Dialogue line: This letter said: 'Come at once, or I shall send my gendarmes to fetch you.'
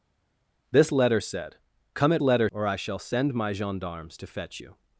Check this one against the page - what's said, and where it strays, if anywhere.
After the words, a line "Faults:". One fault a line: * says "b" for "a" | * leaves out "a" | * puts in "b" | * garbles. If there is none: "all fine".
This letter said: 'Come at letter, or I shall send my gendarmes to fetch you.'
Faults:
* says "letter" for "once"